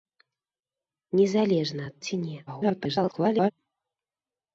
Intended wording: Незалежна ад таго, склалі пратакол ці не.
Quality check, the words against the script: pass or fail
fail